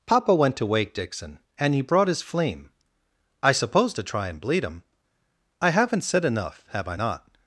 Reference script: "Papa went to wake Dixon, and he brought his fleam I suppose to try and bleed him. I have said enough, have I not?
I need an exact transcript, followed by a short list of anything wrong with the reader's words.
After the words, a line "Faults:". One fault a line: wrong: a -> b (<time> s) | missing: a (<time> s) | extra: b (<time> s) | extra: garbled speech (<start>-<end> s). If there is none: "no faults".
"Papa went to wake Dixon, and he brought his fleam I suppose to try and bleed him. I haven't said enough, have I not?
Faults:
wrong: have -> haven't (5.7 s)